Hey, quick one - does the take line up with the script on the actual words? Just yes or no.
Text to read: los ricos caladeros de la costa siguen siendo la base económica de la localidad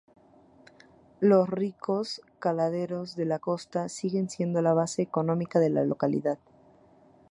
yes